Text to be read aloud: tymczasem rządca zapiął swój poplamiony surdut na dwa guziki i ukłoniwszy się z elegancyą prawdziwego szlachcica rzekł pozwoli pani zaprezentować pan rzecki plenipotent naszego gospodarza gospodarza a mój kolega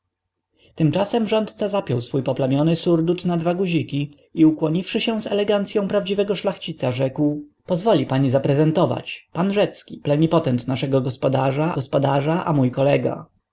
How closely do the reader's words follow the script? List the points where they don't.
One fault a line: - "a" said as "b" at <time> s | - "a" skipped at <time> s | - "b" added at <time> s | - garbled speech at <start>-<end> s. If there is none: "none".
none